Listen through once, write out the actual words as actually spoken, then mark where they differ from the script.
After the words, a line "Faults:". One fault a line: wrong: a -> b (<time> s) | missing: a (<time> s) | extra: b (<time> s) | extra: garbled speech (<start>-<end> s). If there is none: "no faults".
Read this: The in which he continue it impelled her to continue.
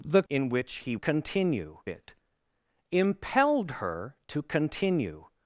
The in which he continue it impelled her to continue.
Faults:
no faults